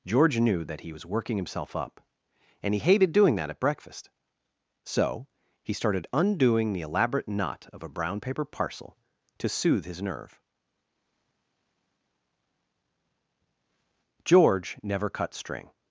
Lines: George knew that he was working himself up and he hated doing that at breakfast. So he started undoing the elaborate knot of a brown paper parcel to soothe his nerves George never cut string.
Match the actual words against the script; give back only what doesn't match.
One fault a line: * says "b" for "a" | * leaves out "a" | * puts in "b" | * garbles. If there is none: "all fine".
* says "nerve" for "nerves"